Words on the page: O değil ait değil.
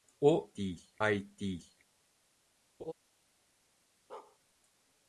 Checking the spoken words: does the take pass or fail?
pass